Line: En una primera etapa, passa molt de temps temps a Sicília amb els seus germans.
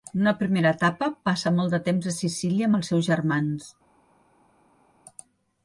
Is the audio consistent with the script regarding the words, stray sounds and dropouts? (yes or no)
no